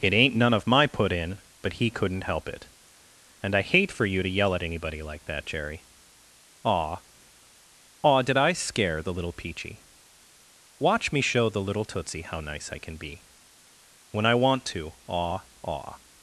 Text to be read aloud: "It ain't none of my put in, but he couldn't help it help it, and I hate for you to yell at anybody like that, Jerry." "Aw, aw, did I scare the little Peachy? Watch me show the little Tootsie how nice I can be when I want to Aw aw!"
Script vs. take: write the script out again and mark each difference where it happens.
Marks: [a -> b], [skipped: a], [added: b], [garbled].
"It ain't none of my put in, but he couldn't help it [skipped: help it,] and I hate for you to yell at anybody like that, Jerry." "Aw, aw, did I scare the little Peachy? Watch me show the little Tootsie how nice I can be when I want to Aw aw!"